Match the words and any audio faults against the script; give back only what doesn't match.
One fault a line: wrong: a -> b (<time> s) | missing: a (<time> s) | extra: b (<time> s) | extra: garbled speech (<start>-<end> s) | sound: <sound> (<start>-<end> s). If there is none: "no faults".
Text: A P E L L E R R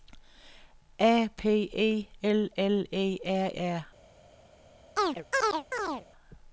sound: chirp (5.0-6.1 s)